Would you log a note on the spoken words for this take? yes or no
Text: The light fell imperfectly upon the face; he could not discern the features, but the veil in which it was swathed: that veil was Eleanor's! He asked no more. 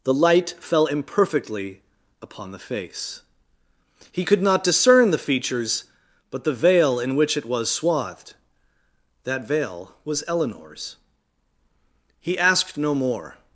no